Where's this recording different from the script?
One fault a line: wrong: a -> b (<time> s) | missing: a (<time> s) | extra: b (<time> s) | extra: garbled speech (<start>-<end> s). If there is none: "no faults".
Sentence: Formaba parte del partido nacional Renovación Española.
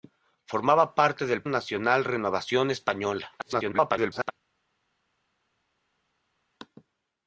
missing: partido (1.4 s)
extra: garbled speech (3.4-4.3 s)